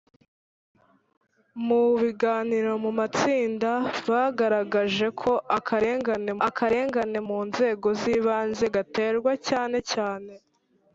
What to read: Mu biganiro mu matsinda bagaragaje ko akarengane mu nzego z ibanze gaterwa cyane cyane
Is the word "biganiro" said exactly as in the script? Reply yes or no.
yes